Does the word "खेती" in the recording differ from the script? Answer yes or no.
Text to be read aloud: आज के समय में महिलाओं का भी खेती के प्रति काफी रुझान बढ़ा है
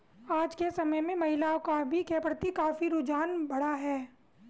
yes